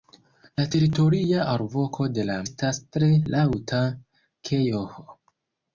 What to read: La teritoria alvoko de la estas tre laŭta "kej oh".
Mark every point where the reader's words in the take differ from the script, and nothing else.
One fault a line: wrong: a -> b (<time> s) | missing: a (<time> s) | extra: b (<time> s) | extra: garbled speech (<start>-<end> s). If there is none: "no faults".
no faults